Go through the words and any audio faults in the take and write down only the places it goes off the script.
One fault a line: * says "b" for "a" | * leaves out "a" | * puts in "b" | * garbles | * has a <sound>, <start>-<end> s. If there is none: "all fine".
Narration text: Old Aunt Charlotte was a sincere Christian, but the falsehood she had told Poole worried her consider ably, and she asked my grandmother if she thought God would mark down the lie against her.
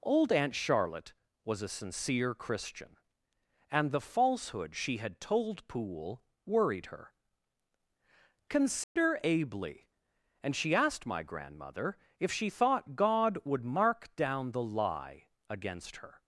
* says "and" for "but"
* has a dropout, 8.8-9.0 s